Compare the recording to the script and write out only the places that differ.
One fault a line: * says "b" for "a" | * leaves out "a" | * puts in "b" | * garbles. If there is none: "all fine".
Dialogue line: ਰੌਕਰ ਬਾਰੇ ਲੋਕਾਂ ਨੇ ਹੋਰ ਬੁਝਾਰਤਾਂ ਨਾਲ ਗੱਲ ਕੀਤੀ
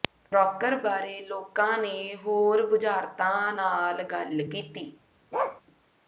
all fine